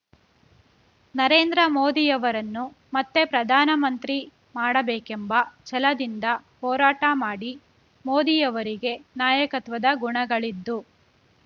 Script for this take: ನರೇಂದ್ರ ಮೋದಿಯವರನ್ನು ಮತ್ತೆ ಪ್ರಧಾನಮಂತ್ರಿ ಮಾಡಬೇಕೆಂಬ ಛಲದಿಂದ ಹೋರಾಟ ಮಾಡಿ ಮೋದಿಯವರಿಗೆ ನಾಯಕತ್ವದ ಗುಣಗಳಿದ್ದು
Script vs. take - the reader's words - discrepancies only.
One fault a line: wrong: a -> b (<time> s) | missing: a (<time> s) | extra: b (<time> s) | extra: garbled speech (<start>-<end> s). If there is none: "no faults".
no faults